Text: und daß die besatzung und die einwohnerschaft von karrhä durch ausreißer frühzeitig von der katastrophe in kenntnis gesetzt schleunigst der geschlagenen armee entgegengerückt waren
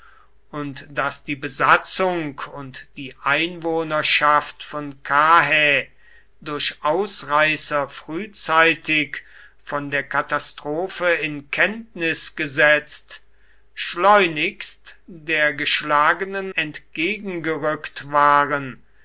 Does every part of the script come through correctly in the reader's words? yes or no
no